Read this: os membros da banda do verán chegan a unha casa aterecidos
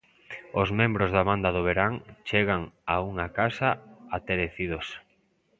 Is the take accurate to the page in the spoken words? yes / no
yes